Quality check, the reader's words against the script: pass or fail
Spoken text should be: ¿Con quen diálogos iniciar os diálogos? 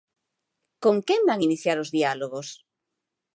fail